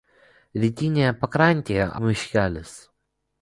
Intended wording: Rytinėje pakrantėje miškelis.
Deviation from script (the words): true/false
false